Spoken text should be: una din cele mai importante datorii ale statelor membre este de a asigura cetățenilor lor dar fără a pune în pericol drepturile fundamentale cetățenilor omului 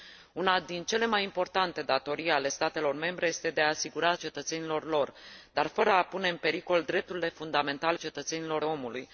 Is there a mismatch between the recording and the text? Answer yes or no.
no